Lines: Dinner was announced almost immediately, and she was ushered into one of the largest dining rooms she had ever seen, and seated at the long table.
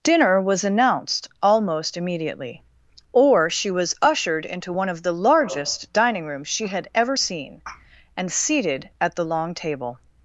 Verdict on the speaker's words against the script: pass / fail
fail